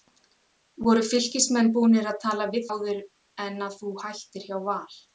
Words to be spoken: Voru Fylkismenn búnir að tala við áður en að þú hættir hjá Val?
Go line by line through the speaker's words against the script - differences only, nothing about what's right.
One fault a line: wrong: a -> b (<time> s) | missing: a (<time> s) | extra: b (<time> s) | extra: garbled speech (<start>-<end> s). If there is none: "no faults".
no faults